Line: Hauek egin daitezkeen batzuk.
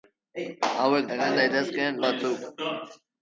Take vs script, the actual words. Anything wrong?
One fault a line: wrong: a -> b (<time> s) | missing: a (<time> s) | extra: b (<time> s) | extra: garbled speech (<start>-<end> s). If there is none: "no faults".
no faults